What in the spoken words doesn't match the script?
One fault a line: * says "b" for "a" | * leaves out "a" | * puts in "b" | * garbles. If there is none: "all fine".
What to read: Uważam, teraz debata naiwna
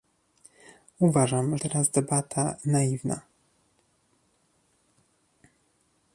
all fine